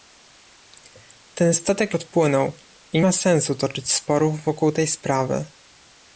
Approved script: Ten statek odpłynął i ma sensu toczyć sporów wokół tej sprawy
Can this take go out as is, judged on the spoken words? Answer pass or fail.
pass